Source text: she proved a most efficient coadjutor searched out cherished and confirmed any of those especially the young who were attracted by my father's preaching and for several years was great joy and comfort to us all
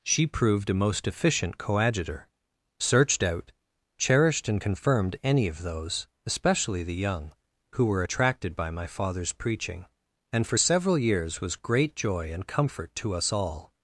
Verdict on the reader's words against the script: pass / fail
pass